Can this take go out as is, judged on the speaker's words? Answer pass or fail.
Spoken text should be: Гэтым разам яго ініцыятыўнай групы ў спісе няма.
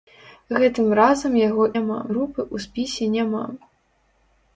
fail